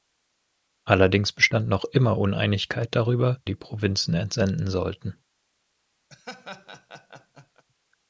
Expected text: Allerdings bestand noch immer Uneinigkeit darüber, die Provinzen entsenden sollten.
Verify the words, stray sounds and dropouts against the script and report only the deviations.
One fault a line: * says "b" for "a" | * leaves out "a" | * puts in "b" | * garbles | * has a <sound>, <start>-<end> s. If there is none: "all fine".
* has a laugh, 6.1-7.6 s